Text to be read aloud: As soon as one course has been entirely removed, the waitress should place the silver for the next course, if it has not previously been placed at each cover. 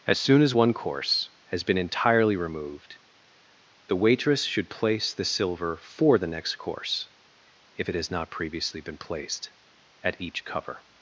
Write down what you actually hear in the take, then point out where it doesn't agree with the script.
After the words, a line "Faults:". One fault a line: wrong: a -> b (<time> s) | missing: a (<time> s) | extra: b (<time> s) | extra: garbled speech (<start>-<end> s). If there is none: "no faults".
As soon as one course has been entirely removed, the waitress should place the silver for the next course, if it has not previously been placed at each cover.
Faults:
no faults